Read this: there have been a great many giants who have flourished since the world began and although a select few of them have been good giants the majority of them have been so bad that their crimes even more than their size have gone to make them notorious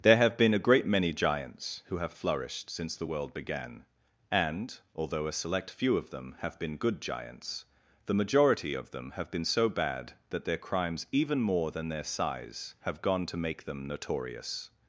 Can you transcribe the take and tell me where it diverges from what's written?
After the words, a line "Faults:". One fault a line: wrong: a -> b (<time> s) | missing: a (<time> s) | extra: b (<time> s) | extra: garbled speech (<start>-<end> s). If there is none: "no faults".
there have been a great many giants who have flourished since the world began and although a select few of them have been good giants the majority of them have been so bad that their crimes even more than their size have gone to make them notorious
Faults:
no faults